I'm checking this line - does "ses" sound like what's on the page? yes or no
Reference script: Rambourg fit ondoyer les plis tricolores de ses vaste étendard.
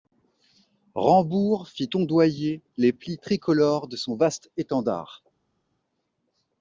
no